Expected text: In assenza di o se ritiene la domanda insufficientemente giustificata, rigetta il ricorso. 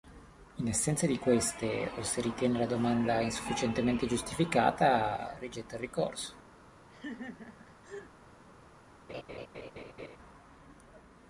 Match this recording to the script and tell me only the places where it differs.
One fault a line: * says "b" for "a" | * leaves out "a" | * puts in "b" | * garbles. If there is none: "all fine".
* puts in "queste"